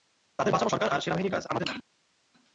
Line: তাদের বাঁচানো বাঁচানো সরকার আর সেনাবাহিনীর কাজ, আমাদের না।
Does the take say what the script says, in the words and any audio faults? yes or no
no